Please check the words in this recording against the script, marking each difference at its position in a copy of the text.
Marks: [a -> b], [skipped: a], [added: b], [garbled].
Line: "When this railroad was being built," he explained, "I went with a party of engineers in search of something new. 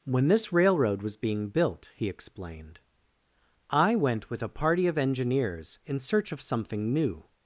"When this railroad was being built," he explained, "I went with a party of engineers in search of something new.